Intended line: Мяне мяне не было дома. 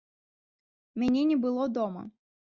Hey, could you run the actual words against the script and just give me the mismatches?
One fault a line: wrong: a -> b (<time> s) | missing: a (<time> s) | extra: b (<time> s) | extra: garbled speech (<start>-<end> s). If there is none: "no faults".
missing: мяне (1.2 s)